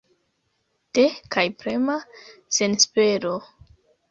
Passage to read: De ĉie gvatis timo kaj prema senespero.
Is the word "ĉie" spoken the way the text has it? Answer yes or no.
no